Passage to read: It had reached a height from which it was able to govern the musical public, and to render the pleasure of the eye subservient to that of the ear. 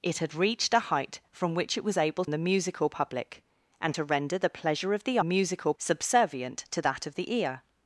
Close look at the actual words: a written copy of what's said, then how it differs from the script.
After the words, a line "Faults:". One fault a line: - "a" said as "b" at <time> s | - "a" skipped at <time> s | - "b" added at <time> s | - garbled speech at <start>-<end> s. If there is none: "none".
It had reached a height from which it was able the musical public, and to render the pleasure of the musical subservient to that of the ear.
Faults:
- "to govern" skipped at 2.2 s
- "eye" said as "musical" at 5.2 s